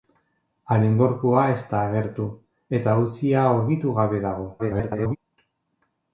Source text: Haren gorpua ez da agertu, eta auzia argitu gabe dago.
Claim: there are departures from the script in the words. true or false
true